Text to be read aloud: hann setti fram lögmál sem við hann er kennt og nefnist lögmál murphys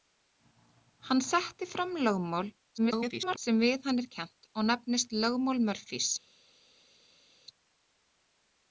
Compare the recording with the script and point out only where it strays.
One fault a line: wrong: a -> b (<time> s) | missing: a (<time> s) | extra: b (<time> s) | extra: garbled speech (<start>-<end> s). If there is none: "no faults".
extra: garbled speech (2.8-3.4 s)